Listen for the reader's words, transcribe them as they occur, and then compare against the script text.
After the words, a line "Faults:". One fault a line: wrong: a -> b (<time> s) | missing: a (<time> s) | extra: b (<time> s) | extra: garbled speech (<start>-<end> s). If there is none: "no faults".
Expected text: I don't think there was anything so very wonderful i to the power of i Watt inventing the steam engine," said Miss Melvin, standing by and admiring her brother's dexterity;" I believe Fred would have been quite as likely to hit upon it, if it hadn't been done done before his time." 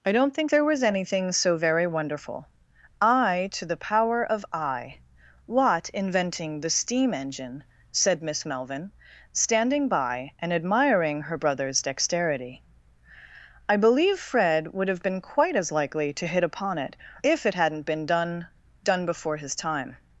I don't think there was anything so very wonderful i to the power of i Watt inventing the steam engine," said Miss Melvin, standing by and admiring her brother's dexterity;" I believe Fred would have been quite as likely to hit upon it, if it hadn't been done done before his time."
Faults:
no faults